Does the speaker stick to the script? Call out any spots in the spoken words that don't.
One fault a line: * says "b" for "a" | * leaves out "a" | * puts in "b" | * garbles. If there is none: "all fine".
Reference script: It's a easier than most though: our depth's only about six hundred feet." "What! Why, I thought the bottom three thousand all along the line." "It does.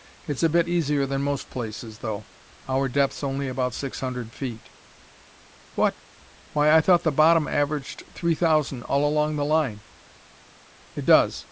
* puts in "bit"
* puts in "places"
* puts in "averaged"